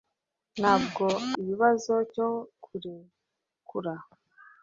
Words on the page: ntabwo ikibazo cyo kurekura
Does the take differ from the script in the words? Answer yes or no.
no